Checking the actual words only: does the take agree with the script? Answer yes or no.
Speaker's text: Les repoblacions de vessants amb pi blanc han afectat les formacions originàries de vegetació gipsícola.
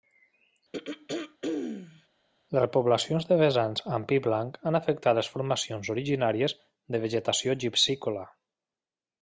yes